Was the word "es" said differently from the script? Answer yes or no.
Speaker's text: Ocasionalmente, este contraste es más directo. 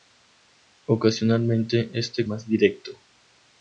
yes